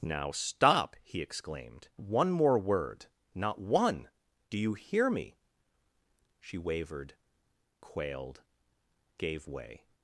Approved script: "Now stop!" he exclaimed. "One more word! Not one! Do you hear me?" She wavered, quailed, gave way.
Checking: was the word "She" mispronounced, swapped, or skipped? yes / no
no